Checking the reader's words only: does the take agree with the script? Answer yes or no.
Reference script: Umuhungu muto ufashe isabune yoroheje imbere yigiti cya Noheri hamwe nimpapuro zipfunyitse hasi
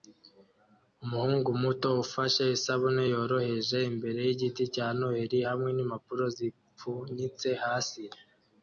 yes